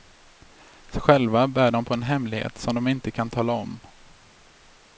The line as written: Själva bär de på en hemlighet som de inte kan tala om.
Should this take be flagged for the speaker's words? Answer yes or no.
no